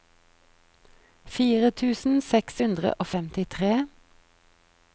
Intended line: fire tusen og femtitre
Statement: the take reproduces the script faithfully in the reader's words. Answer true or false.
false